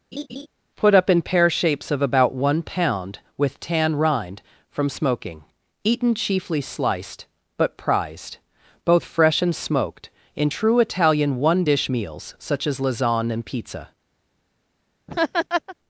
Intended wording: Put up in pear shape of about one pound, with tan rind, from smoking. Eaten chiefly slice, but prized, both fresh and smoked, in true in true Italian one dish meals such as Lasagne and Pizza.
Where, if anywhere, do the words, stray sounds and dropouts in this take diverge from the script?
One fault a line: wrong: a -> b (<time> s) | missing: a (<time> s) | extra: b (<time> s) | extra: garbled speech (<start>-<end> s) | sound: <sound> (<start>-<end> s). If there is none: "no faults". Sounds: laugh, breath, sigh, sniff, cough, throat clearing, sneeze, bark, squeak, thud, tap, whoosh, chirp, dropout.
sound: laugh (0.1-0.5 s)
wrong: shape -> shapes (1.5 s)
wrong: slice -> sliced (6.6 s)
missing: in true (10.8 s)
sound: laugh (15.1-15.8 s)